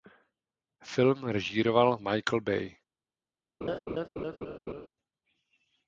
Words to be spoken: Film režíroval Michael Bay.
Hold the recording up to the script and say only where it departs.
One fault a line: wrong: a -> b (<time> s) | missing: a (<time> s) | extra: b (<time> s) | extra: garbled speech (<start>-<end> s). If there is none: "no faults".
no faults